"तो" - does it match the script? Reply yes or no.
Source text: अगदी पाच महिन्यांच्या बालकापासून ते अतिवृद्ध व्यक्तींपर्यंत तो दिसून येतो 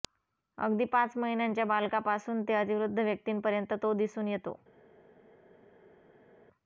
yes